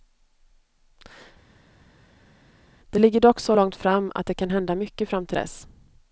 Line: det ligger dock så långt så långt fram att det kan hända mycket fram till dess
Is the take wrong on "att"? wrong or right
right